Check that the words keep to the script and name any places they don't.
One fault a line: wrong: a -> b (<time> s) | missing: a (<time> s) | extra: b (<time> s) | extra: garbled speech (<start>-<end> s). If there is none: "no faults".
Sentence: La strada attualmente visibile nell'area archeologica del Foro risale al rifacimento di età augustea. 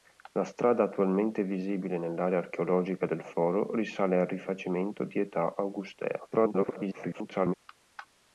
extra: garbled speech (6.3-7.5 s)